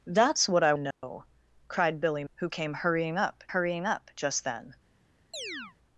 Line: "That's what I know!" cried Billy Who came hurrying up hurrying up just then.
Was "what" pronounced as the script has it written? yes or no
yes